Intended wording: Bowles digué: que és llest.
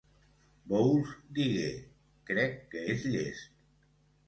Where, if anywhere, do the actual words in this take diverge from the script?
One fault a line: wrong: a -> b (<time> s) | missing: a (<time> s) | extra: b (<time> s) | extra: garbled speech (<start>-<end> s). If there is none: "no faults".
extra: crec (2.3 s)